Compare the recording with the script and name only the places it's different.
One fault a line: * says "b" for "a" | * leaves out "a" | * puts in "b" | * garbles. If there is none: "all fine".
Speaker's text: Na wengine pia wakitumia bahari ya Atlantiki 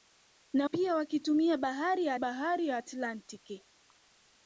* leaves out "wengine"
* puts in "bahari ya"